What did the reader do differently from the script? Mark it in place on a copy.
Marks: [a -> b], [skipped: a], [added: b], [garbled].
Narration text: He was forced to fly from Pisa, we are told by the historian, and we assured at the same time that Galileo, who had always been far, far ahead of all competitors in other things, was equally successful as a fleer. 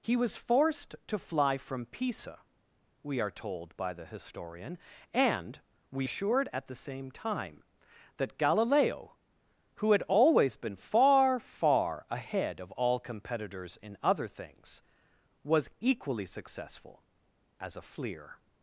He was forced to fly from Pisa, we are told by the historian, and we assured at the same time that Galileo, who had always been far, far ahead of all competitors in other things, was equally successful as a fleer.